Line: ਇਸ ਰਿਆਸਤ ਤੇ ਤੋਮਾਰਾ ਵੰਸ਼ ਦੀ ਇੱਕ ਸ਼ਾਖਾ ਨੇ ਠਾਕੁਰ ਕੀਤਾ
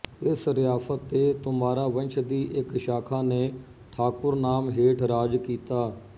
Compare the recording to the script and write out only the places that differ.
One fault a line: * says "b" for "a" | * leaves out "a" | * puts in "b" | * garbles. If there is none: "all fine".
* puts in "ਨਾਮ ਹੇਠ ਰਾਜ"